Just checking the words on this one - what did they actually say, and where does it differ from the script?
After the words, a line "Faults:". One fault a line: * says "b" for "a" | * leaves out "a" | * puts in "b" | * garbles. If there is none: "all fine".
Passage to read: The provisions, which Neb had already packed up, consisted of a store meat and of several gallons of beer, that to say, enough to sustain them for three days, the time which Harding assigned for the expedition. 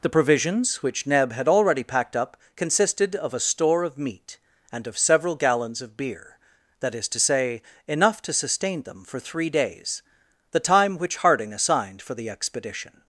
The provisions, which Neb had already packed up, consisted of a store of meat and of several gallons of beer, that is to say, enough to sustain them for three days, the time which Harding assigned for the expedition.
Faults:
* puts in "of"
* puts in "is"